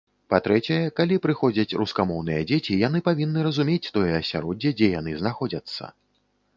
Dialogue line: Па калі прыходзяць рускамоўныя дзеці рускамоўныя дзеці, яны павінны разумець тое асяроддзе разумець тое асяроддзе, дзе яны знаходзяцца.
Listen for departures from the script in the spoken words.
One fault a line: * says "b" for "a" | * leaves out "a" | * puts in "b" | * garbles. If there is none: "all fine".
* puts in "трэцяе"
* leaves out "рускамоўныя дзеці"
* leaves out "разумець тое асяроддзе"